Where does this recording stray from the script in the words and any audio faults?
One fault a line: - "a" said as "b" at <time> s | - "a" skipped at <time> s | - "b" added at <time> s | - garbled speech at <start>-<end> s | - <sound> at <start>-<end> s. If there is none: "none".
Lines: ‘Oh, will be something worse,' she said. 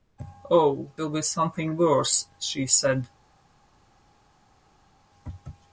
none